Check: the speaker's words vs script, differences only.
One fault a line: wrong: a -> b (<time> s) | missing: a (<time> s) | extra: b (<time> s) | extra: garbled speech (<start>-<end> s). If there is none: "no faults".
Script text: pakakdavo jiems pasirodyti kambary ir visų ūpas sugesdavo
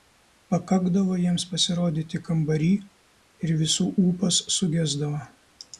no faults